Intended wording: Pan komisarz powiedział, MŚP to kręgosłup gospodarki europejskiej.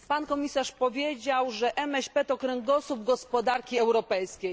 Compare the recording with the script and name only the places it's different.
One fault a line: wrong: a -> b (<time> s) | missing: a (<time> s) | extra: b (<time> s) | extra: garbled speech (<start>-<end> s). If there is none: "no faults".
extra: że (1.5 s)